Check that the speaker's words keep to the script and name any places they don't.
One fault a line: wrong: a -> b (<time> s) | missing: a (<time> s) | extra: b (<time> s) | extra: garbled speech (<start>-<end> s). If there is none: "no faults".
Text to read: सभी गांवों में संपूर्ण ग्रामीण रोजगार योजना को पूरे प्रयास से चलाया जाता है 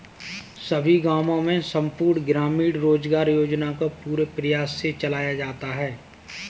no faults